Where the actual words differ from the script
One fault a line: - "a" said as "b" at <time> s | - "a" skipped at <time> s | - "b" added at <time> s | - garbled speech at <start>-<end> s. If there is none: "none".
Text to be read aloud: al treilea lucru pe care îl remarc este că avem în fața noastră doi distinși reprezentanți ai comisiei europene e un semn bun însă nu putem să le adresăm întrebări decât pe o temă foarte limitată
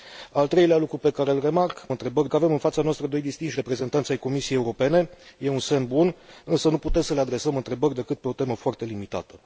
- "este" said as "întrebări" at 1.9 s